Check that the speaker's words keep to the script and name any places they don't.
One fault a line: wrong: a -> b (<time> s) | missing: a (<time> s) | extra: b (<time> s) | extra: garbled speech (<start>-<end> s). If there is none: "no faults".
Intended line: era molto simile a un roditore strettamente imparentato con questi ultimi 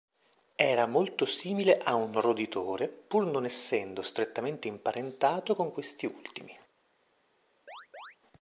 extra: pur non essendo (2.9 s)